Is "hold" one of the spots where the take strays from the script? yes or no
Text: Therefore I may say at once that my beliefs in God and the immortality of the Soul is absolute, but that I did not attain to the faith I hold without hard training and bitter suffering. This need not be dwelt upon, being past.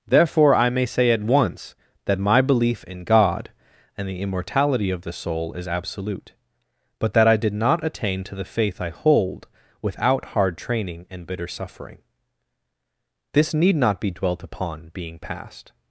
no